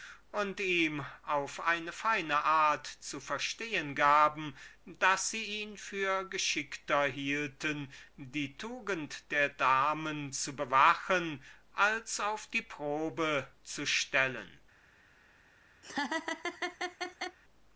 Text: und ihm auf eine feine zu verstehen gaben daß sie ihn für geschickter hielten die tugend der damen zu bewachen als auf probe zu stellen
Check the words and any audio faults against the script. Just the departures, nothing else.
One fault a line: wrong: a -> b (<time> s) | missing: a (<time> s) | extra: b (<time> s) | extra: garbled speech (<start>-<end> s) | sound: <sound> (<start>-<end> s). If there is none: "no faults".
extra: art (2.4 s)
extra: die (12.5 s)
sound: laugh (15.8-17.4 s)